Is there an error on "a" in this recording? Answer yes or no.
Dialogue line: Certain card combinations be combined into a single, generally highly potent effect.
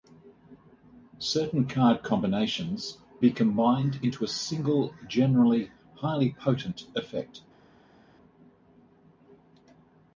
no